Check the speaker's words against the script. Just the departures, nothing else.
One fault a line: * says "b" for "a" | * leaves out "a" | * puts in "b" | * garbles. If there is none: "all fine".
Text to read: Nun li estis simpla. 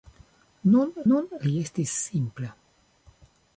* puts in "nun"